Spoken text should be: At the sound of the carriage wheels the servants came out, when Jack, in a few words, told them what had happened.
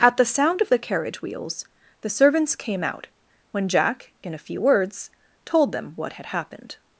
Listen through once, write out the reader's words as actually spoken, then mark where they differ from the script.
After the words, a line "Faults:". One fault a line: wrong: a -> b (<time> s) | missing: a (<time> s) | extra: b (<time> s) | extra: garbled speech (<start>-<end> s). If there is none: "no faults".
At the sound of the carriage wheels the servants came out, when Jack, in a few words, told them what had happened.
Faults:
no faults